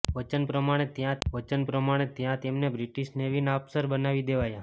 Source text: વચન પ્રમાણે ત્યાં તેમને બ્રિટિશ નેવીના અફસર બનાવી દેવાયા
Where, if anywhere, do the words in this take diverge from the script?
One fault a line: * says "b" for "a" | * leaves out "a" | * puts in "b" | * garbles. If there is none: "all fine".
* puts in "વચન પ્રમાણે ત્યાં"